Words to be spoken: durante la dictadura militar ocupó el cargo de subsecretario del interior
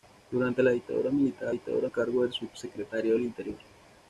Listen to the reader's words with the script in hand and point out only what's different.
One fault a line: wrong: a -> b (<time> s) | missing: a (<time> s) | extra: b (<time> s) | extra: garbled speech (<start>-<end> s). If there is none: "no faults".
wrong: ocupó -> dictadura (1.5 s)